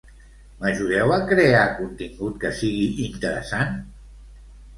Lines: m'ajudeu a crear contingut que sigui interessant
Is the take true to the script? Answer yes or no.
yes